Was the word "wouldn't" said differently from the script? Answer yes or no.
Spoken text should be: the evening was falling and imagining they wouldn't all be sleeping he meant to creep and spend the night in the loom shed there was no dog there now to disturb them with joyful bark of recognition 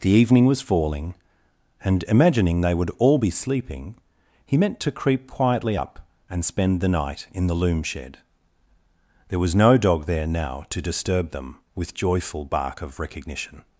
yes